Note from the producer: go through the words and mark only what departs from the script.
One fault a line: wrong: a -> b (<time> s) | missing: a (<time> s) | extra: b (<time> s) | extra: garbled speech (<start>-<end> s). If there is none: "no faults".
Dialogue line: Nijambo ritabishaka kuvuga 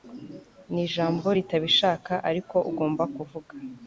extra: ariko ugomba (2.3 s)